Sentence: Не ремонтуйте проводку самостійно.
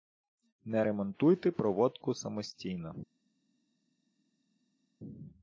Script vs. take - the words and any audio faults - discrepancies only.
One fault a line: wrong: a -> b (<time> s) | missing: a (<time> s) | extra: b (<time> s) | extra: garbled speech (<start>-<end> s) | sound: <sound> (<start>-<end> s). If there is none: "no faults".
no faults